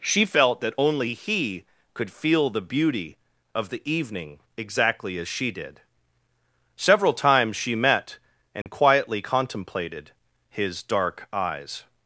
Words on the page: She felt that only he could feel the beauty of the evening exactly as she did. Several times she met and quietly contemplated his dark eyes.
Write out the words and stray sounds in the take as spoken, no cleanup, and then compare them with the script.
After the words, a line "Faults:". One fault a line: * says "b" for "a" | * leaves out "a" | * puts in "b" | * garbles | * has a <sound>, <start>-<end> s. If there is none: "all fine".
She felt that only he could feel the beauty of the evening exactly as she did. Several times she met and quietly contemplated his dark eyes.
Faults:
* has a dropout, 8.6-8.7 s